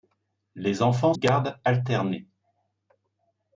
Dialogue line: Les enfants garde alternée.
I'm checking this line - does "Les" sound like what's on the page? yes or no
yes